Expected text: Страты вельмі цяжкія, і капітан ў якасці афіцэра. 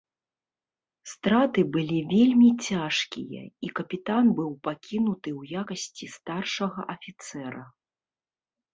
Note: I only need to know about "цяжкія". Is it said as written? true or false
true